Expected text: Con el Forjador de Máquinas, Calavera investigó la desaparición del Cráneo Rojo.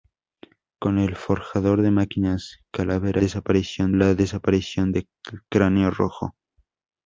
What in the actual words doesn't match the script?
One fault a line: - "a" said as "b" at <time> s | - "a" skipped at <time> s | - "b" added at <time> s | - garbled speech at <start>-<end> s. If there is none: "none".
- "investigó" said as "desaparición" at 3.2 s